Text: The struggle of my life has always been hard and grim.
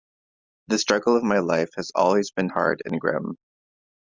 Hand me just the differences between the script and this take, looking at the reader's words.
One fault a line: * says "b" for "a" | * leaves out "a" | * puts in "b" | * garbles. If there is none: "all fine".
all fine